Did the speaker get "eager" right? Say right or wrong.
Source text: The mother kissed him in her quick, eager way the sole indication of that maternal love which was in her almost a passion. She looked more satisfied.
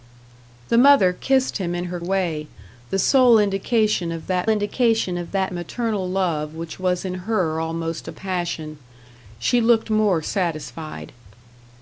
wrong